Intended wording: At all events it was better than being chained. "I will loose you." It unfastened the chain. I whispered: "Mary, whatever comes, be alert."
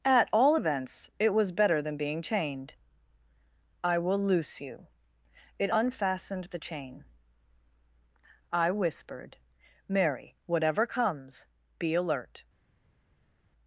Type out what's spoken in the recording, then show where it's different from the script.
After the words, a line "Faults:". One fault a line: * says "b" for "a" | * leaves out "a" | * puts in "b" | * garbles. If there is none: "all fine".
At all events it was better than being chained. "I will loose you." It unfastened the chain. I whispered: "Mary, whatever comes, be alert."
Faults:
all fine